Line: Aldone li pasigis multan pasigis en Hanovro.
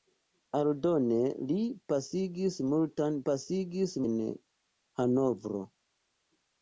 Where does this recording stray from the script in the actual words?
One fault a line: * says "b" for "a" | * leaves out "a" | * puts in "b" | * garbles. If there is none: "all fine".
all fine